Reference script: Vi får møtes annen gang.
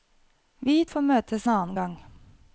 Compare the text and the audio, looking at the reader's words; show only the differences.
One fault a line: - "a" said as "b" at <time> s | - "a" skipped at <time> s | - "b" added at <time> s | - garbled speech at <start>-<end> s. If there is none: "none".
none